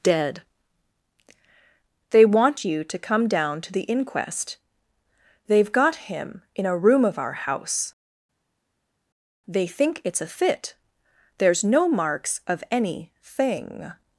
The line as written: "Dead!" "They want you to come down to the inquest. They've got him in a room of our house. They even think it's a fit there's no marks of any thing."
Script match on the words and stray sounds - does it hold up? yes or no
no